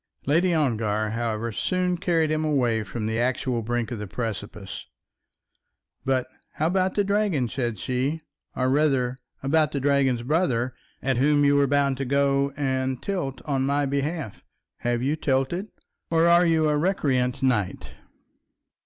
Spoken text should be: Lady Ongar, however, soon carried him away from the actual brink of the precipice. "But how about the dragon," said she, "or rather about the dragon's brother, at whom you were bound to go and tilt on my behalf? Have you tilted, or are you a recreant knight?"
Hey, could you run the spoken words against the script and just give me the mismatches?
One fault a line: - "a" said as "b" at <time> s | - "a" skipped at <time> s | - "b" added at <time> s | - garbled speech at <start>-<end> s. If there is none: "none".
none